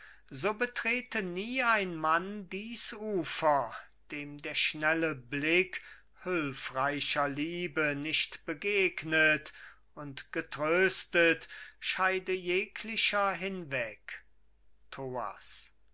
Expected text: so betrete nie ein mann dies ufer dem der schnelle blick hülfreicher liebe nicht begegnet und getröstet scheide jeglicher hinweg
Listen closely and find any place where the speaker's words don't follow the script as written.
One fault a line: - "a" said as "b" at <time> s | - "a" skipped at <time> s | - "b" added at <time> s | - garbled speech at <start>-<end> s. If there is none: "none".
none